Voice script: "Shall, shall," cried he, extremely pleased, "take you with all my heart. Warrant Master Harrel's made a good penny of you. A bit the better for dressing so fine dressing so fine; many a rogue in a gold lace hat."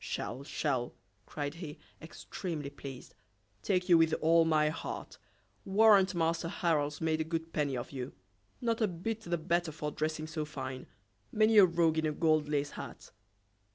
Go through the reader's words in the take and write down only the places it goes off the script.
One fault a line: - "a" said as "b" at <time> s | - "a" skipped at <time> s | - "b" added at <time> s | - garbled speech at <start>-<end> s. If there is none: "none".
- "Not" added at 8.6 s
- "dressing so fine" skipped at 10.9 s